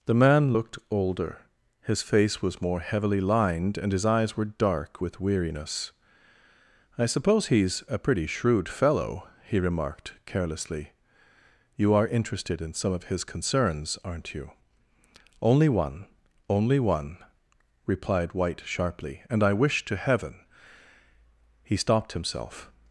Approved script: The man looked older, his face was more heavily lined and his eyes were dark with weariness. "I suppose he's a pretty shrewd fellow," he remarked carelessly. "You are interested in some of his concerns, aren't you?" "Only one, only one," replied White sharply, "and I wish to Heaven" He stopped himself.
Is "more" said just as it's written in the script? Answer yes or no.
yes